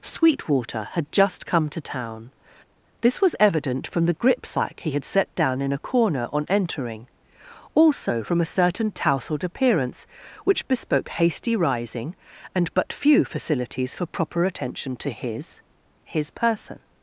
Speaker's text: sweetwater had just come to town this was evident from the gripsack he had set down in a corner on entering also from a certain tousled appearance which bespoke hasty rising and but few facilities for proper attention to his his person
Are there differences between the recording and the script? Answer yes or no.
no